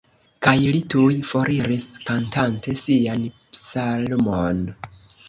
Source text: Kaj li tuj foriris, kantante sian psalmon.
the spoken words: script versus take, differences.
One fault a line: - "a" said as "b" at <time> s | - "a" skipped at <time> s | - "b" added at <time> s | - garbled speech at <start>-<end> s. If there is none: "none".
none